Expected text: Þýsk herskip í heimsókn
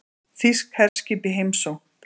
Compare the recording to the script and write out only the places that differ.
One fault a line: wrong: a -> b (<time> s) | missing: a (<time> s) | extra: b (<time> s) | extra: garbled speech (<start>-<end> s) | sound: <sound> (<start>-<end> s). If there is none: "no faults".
sound: dropout (0.9-1.0 s)